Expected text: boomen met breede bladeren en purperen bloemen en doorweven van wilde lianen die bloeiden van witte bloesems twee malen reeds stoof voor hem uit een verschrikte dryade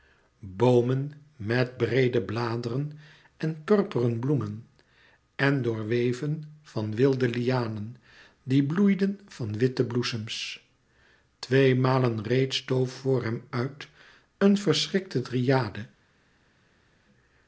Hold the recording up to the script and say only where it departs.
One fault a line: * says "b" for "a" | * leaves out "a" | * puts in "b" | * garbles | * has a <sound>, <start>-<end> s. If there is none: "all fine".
all fine